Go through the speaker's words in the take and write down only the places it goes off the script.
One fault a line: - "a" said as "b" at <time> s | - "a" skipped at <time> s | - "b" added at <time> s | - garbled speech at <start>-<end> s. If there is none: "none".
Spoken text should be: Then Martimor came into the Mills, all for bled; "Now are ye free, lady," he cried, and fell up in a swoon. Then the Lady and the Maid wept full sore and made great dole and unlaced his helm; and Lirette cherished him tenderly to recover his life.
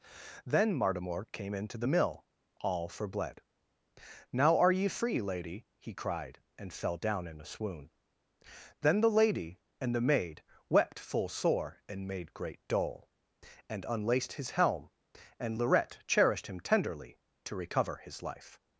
- "Mills" said as "Mill" at 1.8 s
- "up" said as "down" at 6.9 s